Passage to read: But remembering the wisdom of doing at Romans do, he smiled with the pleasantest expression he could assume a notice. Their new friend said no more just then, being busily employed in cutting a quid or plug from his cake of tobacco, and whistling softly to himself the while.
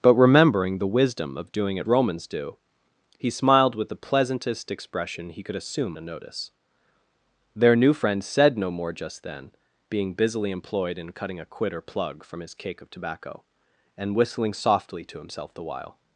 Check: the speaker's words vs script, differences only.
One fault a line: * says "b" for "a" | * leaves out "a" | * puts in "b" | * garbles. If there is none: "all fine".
all fine